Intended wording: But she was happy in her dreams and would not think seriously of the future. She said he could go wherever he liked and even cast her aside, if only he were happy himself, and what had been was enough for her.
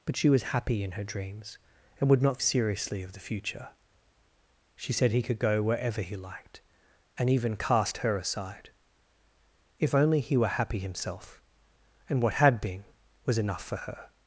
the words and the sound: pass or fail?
fail